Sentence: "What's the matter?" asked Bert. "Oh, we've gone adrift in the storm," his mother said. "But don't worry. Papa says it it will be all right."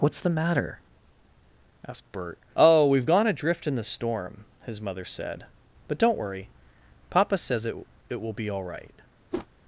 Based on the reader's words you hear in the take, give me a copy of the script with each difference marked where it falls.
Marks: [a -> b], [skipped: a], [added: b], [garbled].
"What's the matter?" asked Bert. "Oh, we've gone adrift in the storm," his mother said. "But don't worry. Papa says it it will be all right."